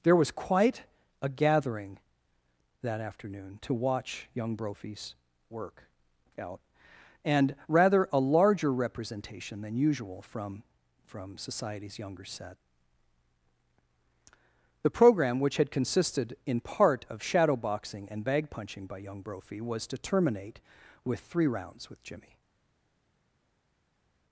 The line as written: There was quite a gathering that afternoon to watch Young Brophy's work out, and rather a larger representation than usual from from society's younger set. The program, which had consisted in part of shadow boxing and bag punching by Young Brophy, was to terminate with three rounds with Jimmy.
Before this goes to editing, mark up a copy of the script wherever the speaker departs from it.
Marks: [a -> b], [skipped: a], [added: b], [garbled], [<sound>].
There was quite a gathering that afternoon to watch Young Brophy's work out, and rather a larger representation than usual from from society's younger set. The program, which had consisted in part of shadow boxing and bag punching by Young Brophy, was to terminate with three rounds with Jimmy.